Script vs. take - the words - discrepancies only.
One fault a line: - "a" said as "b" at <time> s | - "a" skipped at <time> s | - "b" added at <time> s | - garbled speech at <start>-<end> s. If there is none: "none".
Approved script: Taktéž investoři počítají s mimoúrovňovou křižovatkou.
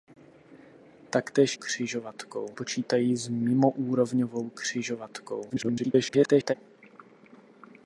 - "investoři" said as "křižovatkou" at 1.5 s
- garbled speech at 5.5-6.5 s